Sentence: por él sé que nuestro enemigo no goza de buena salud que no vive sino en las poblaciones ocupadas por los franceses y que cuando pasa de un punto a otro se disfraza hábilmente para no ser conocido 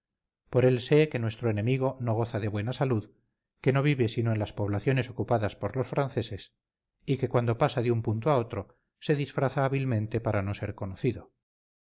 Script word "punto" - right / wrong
right